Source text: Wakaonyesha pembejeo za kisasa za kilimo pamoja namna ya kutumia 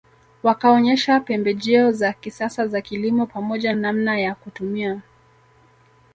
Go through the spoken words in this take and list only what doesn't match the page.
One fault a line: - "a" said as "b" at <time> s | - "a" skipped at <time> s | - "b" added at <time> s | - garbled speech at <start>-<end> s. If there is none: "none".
none